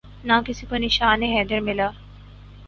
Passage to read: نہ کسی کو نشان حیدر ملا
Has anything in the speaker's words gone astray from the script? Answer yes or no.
no